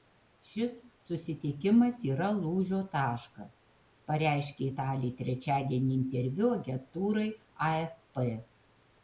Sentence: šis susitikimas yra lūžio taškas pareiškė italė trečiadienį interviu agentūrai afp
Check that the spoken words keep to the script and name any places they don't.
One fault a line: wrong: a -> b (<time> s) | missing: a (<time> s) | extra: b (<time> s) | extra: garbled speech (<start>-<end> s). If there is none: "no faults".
no faults